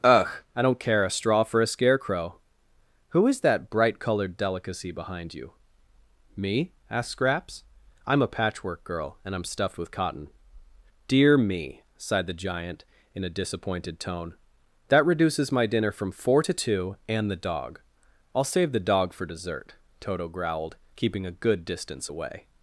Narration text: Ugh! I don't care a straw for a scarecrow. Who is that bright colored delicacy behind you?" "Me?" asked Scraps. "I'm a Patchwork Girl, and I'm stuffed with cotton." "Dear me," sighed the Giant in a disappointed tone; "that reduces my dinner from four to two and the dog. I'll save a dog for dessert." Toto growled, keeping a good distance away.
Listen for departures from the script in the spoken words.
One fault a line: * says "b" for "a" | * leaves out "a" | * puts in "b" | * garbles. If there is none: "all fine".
* says "the" for "a"